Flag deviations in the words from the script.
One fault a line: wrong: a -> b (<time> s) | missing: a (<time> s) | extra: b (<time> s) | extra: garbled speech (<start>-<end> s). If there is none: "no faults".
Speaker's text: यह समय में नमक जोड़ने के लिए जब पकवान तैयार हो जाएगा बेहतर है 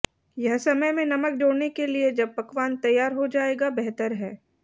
no faults